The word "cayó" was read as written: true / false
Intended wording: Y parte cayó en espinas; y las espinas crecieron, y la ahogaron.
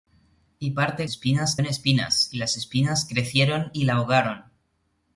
false